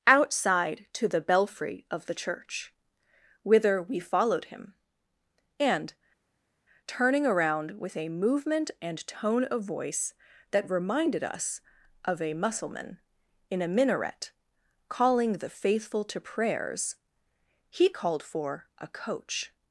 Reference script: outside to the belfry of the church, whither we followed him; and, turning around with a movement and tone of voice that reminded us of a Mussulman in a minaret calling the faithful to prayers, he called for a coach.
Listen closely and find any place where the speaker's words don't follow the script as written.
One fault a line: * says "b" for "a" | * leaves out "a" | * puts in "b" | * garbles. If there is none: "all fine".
all fine